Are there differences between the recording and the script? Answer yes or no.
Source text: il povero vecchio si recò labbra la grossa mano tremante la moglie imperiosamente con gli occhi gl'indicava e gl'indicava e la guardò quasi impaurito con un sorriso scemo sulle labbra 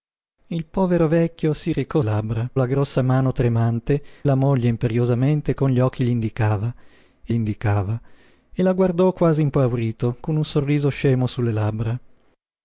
no